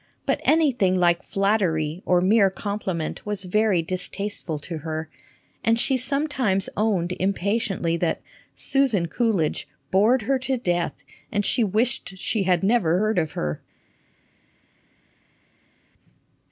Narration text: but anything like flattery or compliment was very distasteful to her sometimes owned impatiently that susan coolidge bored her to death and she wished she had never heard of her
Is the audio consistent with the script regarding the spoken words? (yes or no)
no